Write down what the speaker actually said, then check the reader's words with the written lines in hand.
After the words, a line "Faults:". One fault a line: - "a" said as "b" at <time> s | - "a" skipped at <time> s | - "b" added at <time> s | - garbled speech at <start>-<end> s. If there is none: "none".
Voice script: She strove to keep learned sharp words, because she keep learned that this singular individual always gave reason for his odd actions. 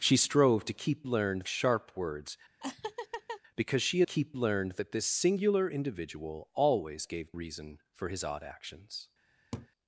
She strove to keep learned sharp words, because she keep learned that this singular individual always gave reason for his odd actions.
Faults:
none